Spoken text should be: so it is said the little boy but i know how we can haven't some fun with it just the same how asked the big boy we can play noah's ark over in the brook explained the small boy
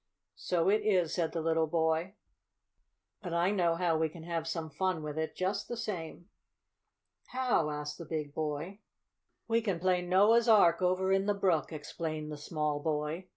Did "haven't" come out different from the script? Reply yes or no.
yes